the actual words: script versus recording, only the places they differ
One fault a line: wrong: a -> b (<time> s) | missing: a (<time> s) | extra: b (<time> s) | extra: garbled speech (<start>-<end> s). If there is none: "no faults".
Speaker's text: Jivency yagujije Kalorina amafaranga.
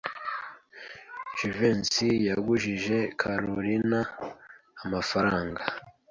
no faults